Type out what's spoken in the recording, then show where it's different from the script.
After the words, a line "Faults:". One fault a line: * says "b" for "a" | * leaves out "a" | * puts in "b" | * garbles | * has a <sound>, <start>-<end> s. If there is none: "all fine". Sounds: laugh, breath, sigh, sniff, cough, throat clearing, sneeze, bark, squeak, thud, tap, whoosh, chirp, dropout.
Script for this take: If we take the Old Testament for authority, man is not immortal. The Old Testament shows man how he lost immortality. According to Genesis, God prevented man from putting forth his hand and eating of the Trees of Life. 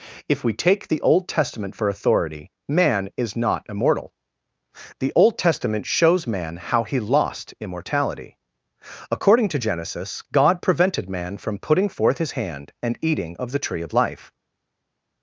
If we take the Old Testament for authority, man is not immortal. The Old Testament shows man how he lost immortality. According to Genesis, God prevented man from putting forth his hand and eating of the Tree of Life.
Faults:
* says "Tree" for "Trees"